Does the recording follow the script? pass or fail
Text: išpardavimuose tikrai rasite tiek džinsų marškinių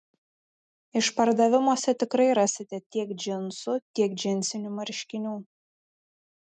fail